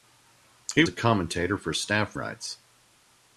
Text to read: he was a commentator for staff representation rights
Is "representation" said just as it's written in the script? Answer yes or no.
no